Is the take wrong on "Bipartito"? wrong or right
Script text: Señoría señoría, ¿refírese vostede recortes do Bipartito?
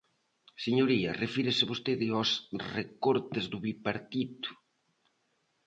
right